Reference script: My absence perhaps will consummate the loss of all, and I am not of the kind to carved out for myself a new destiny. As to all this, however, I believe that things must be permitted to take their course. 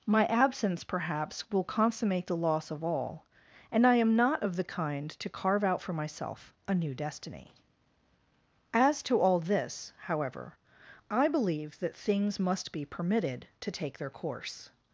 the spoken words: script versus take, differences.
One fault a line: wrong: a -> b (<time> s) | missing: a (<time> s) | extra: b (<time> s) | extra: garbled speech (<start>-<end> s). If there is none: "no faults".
wrong: carved -> carve (5.3 s)